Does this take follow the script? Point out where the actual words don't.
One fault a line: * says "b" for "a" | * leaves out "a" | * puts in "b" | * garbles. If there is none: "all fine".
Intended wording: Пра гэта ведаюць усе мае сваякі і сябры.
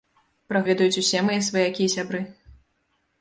* leaves out "гэта"